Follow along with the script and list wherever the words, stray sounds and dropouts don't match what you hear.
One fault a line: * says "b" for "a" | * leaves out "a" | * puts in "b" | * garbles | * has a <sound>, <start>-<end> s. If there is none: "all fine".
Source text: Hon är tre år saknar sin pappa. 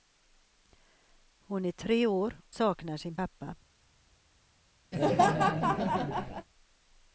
* has a laugh, 4.9-6.5 s